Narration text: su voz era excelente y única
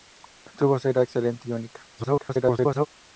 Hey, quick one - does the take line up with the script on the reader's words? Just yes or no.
no